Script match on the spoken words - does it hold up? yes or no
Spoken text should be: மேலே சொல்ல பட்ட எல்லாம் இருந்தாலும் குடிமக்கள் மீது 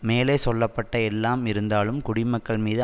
yes